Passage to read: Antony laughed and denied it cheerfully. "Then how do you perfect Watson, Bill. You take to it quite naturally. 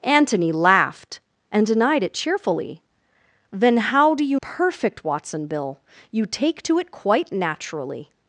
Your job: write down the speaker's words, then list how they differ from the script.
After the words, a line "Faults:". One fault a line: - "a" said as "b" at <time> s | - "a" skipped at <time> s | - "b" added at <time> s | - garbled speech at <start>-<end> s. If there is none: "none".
Antony laughed and denied it cheerfully. "Then how do you perfect Watson, Bill. You take to it quite naturally.
Faults:
none